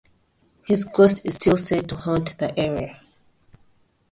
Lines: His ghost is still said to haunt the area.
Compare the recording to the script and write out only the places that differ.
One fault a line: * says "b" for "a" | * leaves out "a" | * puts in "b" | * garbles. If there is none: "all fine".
all fine